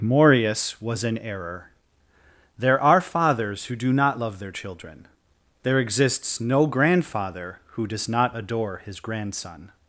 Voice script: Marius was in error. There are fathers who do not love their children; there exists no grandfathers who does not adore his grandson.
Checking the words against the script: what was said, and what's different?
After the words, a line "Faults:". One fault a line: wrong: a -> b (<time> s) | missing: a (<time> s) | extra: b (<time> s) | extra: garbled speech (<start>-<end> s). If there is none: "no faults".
Marius was in error. There are fathers who do not love their children; there exists no grandfather who does not adore his grandson.
Faults:
wrong: grandfathers -> grandfather (6.7 s)